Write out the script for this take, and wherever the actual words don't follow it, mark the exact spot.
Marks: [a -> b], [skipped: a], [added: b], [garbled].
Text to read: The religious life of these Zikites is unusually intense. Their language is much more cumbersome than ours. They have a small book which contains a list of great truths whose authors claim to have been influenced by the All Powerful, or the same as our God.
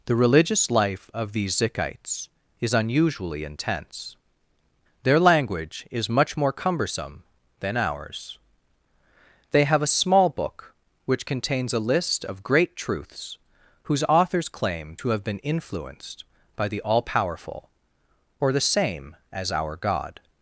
The religious life of these Zikites is unusually intense. Their language is much more cumbersome than ours. They have a small book which contains a list of great truths whose authors claim to have been influenced by the All Powerful, or the same as our God.